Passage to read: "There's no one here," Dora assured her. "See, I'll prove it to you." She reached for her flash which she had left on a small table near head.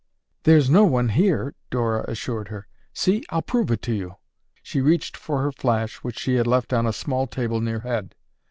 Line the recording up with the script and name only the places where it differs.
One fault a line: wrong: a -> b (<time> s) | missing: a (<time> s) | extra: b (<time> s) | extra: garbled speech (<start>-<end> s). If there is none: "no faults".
no faults